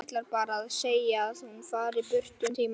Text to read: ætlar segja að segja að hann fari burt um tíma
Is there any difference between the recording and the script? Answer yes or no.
yes